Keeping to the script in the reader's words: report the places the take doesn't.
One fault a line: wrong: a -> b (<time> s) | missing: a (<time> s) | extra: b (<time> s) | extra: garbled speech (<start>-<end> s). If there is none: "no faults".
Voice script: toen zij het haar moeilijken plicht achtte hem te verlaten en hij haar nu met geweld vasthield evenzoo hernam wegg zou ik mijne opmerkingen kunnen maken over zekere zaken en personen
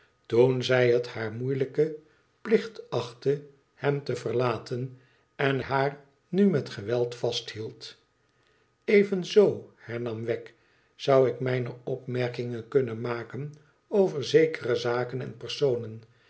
missing: hij (5.6 s)